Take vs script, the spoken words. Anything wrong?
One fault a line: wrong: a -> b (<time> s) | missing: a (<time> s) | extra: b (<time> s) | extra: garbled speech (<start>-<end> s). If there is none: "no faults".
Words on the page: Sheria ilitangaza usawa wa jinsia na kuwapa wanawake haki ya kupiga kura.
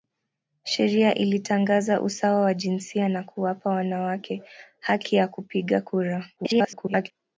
extra: garbled speech (6.4-7.1 s)